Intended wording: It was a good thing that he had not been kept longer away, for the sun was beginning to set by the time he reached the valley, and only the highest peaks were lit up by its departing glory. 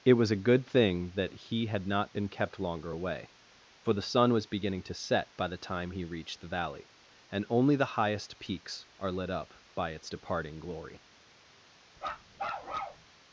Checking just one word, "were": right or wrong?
wrong